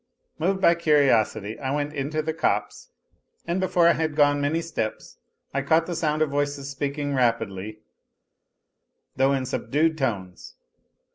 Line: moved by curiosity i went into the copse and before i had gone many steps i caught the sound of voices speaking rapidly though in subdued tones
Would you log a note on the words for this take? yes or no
no